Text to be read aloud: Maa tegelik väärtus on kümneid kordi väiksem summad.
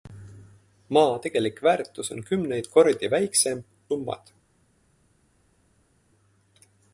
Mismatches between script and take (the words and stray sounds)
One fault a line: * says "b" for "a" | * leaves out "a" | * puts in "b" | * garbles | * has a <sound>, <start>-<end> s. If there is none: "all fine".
all fine